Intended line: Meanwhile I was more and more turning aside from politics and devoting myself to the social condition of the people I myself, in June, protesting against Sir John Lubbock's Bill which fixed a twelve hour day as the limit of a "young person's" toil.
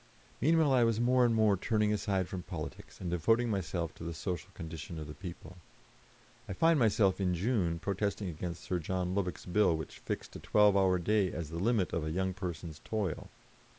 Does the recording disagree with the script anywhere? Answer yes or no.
yes